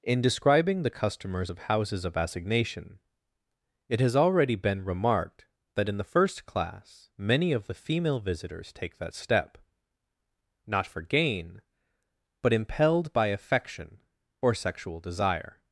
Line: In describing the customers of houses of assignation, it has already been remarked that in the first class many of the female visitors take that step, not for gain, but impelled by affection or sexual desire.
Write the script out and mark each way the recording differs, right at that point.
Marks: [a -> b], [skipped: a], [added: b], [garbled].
In describing the customers of houses of assignation, it has already been remarked that in the first class many of the female visitors take that step, not for gain, but impelled by affection or sexual desire.